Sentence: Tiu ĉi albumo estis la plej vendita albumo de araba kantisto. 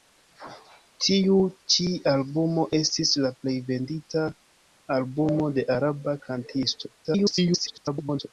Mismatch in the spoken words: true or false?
true